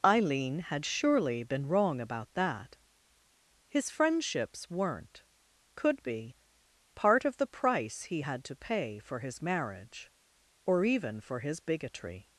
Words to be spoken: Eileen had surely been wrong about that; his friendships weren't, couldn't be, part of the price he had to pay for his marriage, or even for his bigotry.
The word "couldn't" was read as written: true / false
false